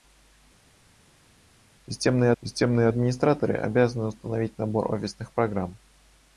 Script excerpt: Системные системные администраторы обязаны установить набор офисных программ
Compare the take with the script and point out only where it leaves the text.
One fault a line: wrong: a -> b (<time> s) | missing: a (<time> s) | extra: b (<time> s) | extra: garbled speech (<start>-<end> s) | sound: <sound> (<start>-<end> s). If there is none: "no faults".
no faults